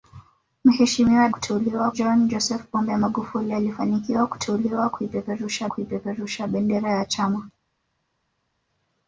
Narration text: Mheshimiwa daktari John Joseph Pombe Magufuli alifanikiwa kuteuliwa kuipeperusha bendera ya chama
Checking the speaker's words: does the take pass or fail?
fail